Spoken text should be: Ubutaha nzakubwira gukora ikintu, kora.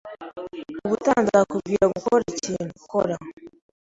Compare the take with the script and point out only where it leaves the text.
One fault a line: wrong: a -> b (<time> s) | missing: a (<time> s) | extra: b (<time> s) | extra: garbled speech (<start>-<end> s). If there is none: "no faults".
no faults